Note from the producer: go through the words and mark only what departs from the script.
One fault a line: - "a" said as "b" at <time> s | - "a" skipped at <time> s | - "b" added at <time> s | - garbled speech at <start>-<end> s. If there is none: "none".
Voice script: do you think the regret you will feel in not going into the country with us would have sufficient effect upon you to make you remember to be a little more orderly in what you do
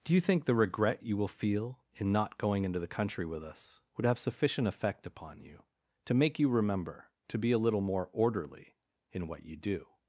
none